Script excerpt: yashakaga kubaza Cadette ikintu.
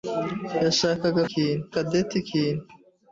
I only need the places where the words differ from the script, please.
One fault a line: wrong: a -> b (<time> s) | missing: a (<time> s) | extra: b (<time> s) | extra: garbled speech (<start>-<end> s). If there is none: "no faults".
wrong: kubaza -> ikintu (1.3 s)